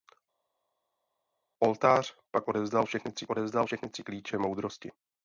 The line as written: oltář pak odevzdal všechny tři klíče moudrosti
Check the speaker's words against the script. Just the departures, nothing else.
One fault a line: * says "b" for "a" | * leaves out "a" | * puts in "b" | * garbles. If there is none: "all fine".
* puts in "odevzdal všechny tři"